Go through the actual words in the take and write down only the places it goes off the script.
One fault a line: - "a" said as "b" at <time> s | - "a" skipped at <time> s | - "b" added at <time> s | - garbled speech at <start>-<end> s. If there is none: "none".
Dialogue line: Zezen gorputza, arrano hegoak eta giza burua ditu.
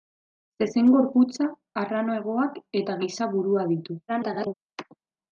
- garbled speech at 4.1-4.5 s